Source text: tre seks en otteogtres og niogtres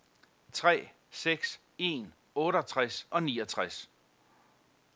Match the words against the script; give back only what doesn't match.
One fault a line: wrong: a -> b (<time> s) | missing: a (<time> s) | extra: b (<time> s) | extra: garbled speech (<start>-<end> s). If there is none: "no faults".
no faults